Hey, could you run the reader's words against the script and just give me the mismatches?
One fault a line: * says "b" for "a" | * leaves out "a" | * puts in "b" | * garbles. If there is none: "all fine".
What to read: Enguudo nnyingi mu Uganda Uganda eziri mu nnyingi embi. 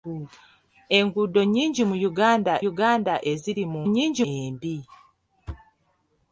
all fine